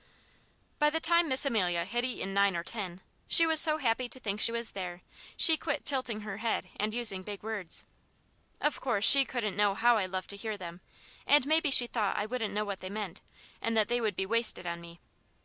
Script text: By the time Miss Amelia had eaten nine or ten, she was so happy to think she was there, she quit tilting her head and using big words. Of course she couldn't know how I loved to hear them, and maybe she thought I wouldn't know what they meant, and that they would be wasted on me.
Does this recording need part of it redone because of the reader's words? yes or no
no